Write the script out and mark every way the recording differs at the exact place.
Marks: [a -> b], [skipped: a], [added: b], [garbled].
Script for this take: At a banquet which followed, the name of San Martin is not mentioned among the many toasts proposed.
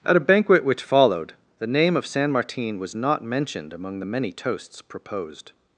At a banquet which followed, the name of San Martin [is -> was] not mentioned among the many toasts proposed.